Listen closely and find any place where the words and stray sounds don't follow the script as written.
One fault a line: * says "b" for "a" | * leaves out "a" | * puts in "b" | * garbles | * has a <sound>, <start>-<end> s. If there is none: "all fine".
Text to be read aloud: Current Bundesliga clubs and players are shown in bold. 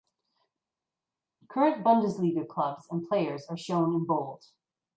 all fine